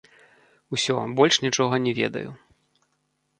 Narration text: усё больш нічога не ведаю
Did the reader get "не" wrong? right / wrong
right